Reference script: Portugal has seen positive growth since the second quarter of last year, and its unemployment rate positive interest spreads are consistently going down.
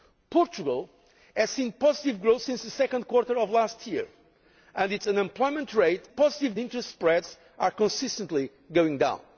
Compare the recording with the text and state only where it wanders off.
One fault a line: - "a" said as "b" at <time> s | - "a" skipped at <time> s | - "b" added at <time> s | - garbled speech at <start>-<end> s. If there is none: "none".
none